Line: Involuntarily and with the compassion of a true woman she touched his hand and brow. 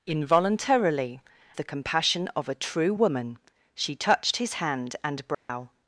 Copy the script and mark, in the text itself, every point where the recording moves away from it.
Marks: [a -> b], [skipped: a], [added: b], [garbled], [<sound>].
Involuntarily [skipped: and with] the compassion of a true woman she touched his hand and brow. [dropout]